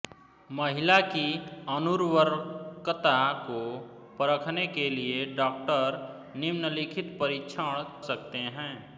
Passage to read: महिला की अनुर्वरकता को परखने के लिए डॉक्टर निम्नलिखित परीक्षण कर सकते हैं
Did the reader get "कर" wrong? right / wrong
wrong